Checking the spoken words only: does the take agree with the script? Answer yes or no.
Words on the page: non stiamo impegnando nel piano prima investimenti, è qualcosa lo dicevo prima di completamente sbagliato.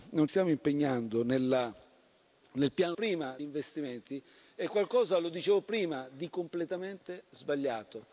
yes